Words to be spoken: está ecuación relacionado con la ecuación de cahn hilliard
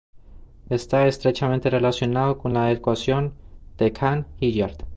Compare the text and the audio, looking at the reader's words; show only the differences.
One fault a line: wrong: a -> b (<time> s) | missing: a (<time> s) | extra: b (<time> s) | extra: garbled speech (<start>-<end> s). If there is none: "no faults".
wrong: ecuación -> estrechamente (1.1 s)